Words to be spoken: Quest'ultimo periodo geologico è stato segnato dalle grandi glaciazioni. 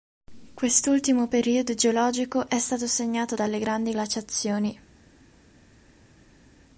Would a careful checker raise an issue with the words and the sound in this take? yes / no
no